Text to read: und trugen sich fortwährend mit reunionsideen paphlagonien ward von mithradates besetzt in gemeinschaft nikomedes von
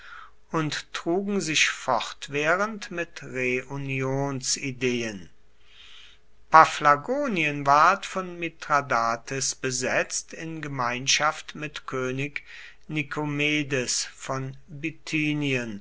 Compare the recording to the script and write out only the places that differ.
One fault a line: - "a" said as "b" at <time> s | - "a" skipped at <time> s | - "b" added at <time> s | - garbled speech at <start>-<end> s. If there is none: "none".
- "mit könig" added at 11.5 s